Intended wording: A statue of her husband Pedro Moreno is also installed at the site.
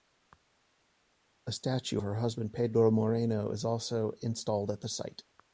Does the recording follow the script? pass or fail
fail